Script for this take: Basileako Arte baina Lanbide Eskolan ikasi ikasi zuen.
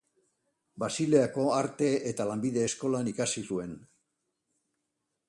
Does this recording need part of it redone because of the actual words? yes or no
yes